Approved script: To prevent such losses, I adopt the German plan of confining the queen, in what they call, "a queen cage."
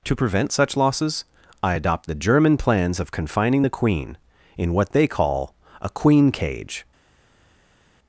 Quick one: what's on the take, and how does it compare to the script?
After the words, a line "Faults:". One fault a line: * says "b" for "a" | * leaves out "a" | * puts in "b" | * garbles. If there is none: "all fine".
To prevent such losses, I adopt the German plans of confining the queen, in what they call, "a queen cage."
Faults:
* says "plans" for "plan"